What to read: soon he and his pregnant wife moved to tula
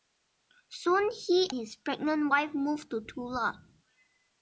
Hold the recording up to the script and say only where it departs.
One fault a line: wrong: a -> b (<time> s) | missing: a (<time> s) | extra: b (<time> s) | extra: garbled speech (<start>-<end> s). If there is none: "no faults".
missing: and (1.5 s)